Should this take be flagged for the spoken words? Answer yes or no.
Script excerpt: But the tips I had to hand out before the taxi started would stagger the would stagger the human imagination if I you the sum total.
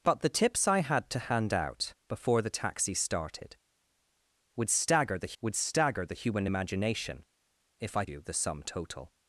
no